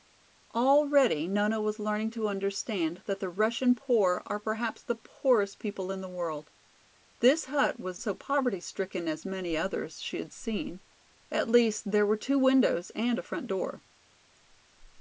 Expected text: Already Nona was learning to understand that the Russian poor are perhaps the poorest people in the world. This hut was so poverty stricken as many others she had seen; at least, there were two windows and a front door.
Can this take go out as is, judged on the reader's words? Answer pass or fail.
pass